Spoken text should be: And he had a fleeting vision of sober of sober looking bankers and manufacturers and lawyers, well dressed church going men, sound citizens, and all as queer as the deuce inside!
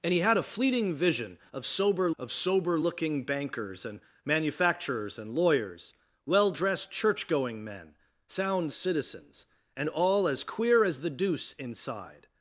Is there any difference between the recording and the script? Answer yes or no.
no